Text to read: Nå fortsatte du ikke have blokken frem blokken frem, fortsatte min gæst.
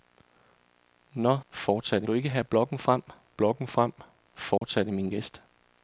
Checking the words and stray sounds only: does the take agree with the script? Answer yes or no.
no